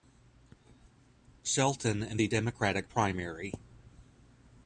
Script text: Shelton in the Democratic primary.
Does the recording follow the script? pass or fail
pass